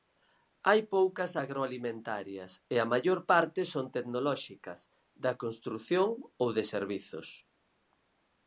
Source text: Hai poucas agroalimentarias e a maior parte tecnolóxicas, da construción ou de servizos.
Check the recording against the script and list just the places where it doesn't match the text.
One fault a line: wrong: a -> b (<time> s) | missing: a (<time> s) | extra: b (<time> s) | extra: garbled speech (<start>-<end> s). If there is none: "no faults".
extra: son (3.7 s)